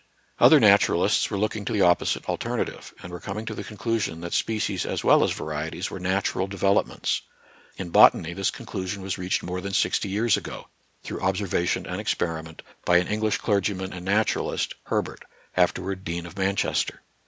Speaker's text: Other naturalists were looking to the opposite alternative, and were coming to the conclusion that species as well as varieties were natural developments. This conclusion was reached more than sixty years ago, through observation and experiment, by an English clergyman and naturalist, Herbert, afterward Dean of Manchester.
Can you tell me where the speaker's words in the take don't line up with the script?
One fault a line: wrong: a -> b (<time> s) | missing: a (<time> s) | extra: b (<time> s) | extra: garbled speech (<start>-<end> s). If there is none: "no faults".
extra: In botany (7.8 s)